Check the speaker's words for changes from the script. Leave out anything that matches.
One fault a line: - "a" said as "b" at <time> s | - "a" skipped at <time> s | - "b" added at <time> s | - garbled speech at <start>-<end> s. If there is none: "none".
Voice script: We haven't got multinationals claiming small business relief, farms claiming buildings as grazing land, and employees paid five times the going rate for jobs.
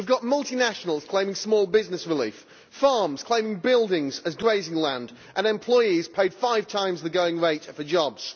- "haven't" said as "have" at 0.1 s